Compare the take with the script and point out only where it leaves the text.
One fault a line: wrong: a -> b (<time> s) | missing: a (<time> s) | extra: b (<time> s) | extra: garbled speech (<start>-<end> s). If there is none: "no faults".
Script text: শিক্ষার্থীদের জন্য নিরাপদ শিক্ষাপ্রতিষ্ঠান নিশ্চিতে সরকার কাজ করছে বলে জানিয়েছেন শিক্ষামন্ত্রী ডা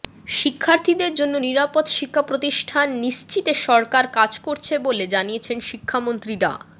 no faults